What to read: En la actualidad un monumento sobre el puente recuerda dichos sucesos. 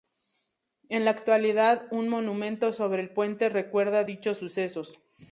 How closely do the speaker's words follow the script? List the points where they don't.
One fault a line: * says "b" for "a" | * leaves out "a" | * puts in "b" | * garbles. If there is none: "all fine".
all fine